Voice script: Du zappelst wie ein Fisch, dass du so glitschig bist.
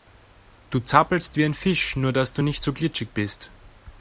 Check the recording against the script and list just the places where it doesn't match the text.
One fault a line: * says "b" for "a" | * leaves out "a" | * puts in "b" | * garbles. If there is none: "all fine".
* puts in "nur"
* puts in "nicht"